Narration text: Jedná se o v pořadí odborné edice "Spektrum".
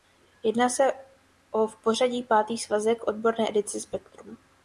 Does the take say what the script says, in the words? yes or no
no